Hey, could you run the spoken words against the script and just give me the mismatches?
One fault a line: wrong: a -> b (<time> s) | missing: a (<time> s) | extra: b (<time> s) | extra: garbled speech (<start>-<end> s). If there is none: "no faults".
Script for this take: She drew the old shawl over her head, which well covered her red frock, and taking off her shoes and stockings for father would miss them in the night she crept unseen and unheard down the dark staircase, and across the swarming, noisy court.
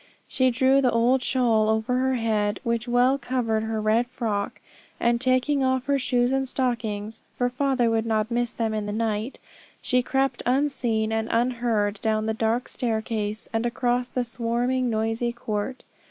extra: not (8.1 s)